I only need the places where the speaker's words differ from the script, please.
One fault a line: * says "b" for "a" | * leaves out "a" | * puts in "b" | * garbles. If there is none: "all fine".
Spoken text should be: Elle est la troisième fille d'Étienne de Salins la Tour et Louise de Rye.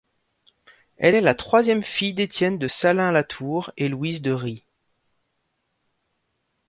all fine